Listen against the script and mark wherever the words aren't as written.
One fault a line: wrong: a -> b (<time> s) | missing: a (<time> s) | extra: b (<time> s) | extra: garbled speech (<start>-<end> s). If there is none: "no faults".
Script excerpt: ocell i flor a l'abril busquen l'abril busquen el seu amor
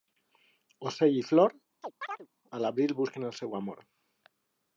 missing: l'abril busquen (3.3 s)